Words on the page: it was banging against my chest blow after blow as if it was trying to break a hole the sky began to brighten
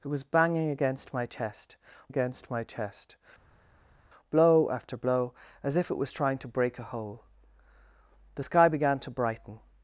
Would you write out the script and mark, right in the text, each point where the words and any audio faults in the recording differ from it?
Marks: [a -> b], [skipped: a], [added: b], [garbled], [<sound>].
it was banging against my chest [added: against my chest] blow after blow as if it was trying to break a hole the sky began to brighten